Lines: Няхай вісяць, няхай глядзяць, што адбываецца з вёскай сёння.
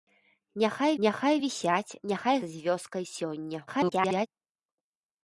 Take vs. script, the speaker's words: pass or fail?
fail